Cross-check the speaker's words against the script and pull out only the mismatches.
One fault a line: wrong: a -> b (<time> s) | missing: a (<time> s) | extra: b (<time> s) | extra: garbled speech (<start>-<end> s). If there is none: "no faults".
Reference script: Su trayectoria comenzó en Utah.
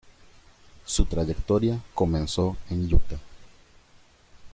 no faults